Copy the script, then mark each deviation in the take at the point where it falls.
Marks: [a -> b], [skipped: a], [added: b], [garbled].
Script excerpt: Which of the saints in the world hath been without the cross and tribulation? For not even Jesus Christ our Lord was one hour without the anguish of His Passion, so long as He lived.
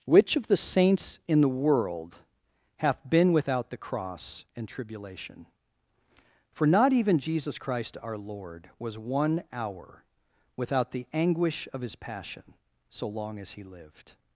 Which of the saints in the world hath been without the cross and tribulation? For not even Jesus Christ our Lord was one hour without the anguish of His Passion, so long as He lived.